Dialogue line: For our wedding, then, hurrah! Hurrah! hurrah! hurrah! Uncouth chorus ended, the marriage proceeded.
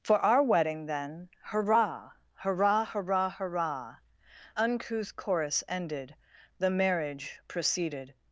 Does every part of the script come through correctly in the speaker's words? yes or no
yes